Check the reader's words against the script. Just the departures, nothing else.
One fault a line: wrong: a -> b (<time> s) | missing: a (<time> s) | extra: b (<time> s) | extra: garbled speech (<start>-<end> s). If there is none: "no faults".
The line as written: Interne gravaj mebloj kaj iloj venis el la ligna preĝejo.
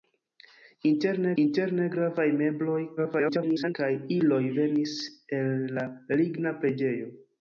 extra: interne (1.4 s)
extra: garbled speech (3.0-3.7 s)